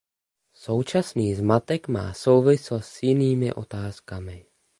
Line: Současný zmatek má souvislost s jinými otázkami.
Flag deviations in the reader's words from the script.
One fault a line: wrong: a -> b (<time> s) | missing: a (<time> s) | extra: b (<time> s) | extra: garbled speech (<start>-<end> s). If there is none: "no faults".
no faults